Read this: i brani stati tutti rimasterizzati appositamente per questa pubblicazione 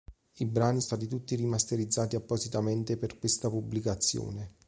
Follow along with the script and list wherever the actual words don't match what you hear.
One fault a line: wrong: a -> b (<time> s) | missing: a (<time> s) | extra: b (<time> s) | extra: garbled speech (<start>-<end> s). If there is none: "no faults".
no faults